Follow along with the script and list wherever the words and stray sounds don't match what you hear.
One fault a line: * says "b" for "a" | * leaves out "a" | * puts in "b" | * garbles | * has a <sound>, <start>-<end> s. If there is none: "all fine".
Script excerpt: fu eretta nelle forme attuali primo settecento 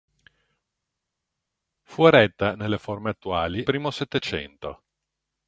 all fine